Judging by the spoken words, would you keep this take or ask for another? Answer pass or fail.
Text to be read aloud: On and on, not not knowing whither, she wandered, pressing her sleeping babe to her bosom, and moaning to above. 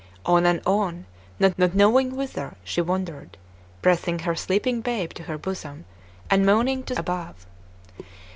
pass